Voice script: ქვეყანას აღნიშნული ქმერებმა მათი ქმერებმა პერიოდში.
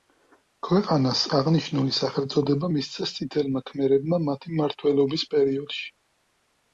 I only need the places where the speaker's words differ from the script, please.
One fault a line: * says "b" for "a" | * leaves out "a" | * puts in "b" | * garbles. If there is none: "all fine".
* puts in "სახელწოდება მისცეს წითელმა"
* says "მმართველობის" for "ქმერებმა"